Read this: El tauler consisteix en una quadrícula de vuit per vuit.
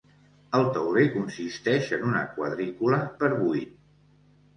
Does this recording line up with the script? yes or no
no